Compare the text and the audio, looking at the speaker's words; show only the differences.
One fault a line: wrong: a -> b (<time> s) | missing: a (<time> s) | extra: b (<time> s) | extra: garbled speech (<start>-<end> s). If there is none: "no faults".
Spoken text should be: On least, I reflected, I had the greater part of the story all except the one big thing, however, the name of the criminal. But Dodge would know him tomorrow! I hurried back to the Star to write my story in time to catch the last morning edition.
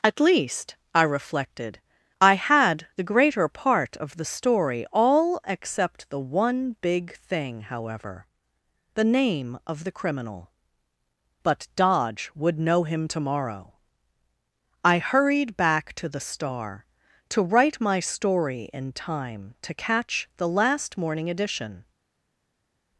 wrong: On -> At (0.0 s)